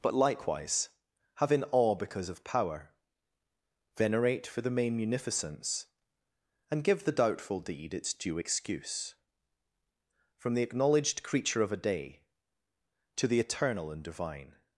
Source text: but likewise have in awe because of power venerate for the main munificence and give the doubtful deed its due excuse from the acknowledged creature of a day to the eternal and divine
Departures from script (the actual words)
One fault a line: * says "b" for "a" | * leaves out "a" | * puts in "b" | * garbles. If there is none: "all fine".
all fine